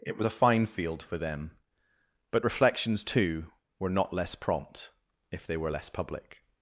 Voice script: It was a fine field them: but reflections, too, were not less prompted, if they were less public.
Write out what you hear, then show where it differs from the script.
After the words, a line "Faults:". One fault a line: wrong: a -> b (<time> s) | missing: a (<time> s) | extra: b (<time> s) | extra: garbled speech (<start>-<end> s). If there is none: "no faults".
It was a fine field for them: but reflections, too, were not less prompt, if they were less public.
Faults:
extra: for (1.0 s)
wrong: prompted -> prompt (4.4 s)